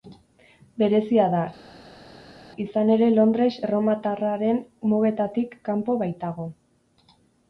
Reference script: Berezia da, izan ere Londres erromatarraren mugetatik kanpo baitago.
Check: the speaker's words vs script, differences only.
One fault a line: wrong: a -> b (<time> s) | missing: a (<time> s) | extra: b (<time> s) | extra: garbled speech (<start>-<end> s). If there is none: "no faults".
no faults